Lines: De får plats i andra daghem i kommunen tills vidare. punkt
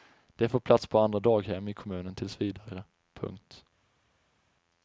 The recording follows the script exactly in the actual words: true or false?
false